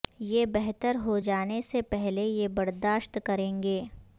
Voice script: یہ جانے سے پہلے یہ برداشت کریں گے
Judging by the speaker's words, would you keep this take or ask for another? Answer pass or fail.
fail